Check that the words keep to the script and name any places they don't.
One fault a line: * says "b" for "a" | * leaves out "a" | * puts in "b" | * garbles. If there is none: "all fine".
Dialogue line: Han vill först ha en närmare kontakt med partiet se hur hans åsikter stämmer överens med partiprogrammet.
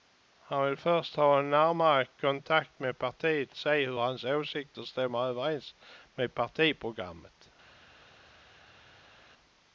all fine